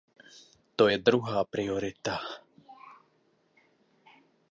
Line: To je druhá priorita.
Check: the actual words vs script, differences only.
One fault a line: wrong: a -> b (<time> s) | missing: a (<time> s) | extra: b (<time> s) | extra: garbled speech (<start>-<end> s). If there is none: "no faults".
no faults